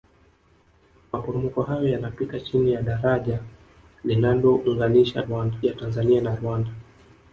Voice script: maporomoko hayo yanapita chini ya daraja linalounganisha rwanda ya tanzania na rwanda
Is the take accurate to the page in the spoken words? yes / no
yes